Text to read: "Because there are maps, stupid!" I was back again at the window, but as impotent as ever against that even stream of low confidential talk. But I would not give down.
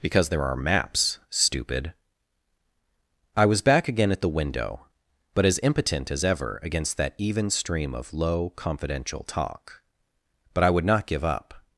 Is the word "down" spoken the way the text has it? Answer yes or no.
no